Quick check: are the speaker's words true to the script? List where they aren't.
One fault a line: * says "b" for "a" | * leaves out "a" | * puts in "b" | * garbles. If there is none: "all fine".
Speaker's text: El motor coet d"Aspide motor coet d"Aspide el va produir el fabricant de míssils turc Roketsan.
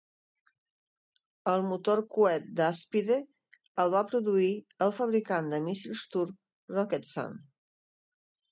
* leaves out "motor coet d"Aspide"